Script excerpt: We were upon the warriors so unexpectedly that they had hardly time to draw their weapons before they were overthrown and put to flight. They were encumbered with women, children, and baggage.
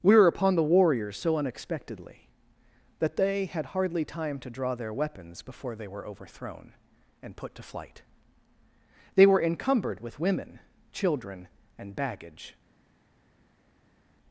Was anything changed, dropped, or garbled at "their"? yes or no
no